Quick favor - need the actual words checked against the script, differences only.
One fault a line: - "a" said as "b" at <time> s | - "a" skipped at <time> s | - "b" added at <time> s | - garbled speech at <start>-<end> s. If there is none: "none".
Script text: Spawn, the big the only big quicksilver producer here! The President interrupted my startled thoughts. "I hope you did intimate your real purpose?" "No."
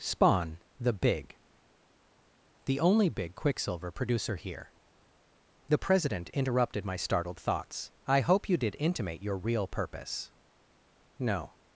none